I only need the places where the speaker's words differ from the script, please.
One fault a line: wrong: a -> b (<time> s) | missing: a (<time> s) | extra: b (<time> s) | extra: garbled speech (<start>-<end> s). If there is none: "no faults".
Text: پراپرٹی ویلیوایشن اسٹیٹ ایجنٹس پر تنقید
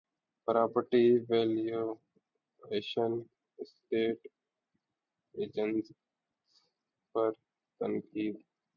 no faults